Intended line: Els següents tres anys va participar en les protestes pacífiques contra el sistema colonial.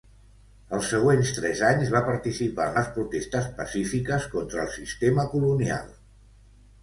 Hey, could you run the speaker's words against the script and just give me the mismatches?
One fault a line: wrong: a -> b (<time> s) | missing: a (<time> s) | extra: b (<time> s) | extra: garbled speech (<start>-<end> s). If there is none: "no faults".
no faults